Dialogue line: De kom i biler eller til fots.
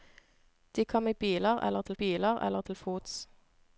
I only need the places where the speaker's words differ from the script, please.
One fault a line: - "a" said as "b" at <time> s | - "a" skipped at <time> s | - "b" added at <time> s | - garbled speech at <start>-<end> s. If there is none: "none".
- "biler eller til" added at 1.9 s